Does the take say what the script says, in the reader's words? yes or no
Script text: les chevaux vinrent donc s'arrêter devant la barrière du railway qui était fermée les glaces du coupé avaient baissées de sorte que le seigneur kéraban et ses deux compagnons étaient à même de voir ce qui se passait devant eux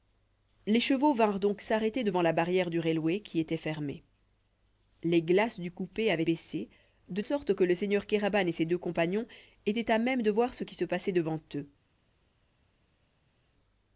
yes